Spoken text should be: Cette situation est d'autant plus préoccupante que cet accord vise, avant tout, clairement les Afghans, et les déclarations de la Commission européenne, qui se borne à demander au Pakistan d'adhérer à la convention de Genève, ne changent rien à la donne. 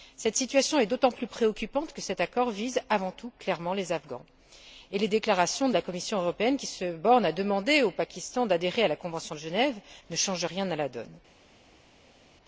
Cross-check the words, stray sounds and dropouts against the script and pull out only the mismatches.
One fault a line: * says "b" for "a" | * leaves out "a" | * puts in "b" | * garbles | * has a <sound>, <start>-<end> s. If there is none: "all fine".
all fine